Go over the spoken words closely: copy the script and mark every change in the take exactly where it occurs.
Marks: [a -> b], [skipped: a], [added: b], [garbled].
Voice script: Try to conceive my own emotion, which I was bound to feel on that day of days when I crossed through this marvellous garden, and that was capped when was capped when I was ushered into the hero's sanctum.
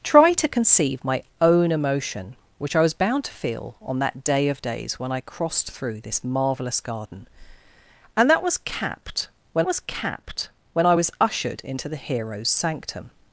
Try to conceive my own emotion, which I was bound to feel on that day of days when I crossed through this marvellous garden, and that was capped when was capped when I was ushered into the hero's sanctum.